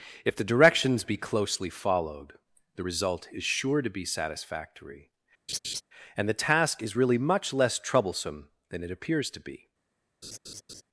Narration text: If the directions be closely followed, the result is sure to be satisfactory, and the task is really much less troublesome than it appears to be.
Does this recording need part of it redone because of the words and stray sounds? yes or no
yes